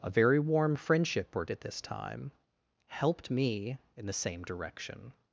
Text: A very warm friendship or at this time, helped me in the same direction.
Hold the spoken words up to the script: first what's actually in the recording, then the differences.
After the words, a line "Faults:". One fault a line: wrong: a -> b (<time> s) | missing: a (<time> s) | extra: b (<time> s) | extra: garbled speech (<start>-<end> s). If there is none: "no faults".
A very warm friendship or at this time, helped me in the same direction.
Faults:
no faults